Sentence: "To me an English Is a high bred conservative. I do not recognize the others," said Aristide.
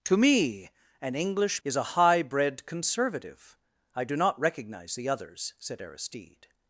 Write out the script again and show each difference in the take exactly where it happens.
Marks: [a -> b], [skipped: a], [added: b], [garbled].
"To me an English Is a high bred conservative. I do not recognize the others," said Aristide.